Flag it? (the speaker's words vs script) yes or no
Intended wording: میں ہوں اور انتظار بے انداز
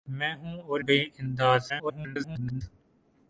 yes